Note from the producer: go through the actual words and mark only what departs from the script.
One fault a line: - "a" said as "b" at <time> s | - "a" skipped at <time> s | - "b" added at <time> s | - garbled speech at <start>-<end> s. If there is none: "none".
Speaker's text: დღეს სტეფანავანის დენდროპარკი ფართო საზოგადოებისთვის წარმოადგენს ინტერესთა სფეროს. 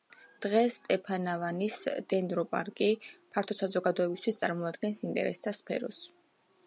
none